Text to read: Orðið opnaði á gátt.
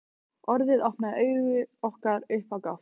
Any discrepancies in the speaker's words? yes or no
yes